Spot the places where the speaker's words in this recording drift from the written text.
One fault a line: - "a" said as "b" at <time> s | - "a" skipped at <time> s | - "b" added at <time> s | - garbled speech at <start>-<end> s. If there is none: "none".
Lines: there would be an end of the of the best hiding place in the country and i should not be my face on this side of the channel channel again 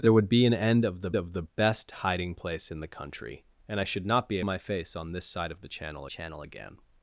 none